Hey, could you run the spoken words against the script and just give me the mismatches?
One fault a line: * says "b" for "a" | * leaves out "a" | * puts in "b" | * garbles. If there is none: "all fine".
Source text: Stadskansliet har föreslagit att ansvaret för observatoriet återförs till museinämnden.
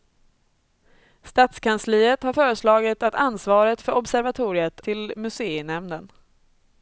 * leaves out "återförs"